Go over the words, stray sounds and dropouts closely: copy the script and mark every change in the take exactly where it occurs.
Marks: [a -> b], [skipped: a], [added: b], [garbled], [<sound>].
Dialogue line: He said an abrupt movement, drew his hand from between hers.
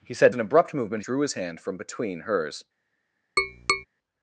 He said an abrupt movement, drew his hand from between hers. [tap]